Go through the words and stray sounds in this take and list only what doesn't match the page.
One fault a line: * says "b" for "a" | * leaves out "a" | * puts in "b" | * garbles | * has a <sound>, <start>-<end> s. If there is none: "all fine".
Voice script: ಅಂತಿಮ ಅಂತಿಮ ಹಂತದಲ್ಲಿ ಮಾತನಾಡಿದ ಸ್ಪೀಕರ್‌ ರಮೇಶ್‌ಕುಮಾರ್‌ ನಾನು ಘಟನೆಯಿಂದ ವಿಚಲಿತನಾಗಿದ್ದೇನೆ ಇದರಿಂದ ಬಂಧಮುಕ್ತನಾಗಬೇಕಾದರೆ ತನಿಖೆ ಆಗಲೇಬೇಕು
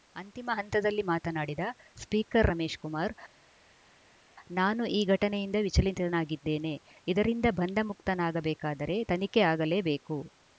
* leaves out "ಅಂತಿಮ"
* puts in "ಈ"